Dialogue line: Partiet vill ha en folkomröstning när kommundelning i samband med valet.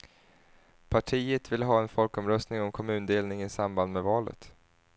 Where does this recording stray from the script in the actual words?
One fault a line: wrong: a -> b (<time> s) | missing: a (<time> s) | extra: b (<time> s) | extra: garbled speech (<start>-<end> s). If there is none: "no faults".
wrong: när -> om (2.6 s)